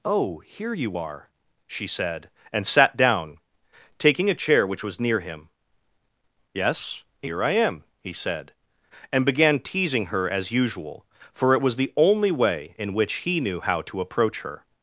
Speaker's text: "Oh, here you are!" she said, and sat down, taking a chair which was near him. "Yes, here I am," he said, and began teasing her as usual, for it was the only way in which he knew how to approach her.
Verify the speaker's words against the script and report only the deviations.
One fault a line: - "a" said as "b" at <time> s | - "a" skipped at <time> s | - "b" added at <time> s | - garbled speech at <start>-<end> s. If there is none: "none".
none